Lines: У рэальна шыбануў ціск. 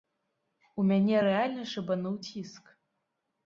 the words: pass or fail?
fail